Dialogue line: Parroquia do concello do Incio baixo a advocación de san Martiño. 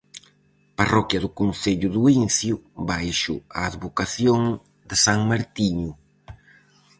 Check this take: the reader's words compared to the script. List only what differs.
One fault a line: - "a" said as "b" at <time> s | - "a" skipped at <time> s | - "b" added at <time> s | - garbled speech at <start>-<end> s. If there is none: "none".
none